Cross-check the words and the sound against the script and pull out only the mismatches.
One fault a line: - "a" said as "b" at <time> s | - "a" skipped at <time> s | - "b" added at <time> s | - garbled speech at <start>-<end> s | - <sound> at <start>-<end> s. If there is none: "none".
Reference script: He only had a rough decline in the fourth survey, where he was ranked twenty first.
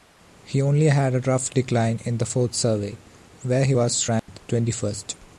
- dropout at 4.2-4.3 s